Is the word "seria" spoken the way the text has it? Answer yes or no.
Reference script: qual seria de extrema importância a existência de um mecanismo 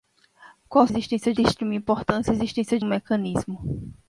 no